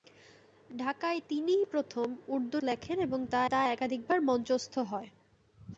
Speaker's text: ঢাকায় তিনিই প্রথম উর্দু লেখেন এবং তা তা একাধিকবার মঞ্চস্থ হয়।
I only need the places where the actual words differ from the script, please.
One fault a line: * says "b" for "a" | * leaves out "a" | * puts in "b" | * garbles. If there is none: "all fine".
all fine